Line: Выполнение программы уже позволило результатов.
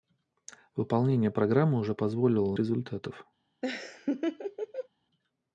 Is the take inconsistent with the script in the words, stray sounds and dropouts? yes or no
yes